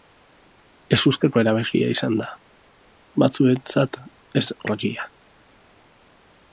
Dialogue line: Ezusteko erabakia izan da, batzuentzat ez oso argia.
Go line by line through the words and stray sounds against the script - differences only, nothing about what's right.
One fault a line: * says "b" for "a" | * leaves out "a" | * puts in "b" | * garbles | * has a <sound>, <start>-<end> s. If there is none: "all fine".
* leaves out "oso"